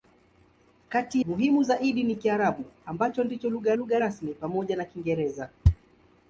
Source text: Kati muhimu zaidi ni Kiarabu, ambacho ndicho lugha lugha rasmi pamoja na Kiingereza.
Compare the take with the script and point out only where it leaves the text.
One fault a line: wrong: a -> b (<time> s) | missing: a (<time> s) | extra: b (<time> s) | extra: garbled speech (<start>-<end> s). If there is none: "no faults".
no faults